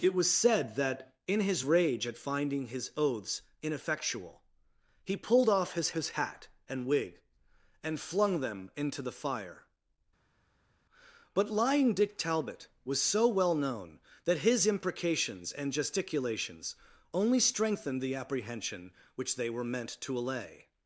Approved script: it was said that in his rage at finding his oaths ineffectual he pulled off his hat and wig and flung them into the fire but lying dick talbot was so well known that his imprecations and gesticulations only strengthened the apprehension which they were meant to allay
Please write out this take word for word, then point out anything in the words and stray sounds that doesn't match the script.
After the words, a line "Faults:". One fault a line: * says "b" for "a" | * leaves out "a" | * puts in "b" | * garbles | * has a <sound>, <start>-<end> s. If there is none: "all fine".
it was said that in his rage at finding his oaths ineffectual he pulled off his his hat and wig and flung them into the fire but lying dick talbot was so well known that his imprecations and gesticulations only strengthened the apprehension which they were meant to allay
Faults:
* puts in "his"